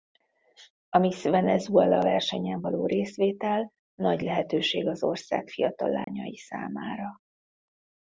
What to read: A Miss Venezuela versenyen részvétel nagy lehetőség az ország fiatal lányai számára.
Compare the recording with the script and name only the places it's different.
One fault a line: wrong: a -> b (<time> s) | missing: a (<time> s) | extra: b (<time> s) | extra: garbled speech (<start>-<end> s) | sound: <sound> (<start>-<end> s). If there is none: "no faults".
extra: való (2.6 s)
sound: dropout (6.0-6.1 s)